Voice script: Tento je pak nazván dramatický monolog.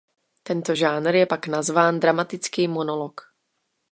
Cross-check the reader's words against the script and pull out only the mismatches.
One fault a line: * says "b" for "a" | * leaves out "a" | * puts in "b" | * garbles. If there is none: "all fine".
* puts in "žánr"